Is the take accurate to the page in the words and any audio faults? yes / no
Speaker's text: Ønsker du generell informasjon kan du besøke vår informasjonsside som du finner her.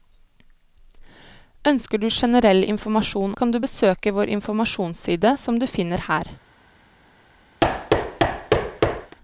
no